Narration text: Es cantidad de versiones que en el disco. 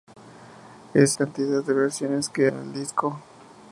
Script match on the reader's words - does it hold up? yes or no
yes